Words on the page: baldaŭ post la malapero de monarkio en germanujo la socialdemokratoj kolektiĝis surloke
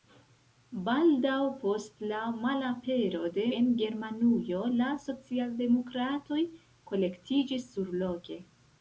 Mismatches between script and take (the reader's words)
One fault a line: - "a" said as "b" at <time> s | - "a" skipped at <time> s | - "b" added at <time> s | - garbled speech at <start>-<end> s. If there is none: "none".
- "monarkio" skipped at 3.5 s